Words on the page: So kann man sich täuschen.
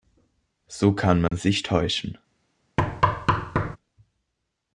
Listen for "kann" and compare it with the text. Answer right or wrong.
right